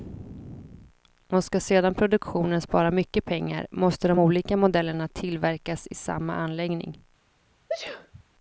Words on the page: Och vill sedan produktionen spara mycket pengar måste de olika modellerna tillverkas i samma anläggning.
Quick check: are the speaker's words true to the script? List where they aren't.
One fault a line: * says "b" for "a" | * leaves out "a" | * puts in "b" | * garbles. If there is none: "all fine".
* says "ska" for "vill"